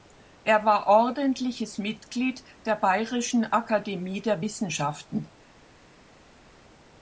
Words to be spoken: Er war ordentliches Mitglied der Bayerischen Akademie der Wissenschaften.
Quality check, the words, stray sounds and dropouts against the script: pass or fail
pass